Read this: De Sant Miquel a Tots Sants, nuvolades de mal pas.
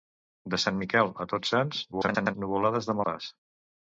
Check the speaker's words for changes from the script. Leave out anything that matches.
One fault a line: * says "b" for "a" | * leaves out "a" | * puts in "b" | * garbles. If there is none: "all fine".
* garbles
* leaves out "mal"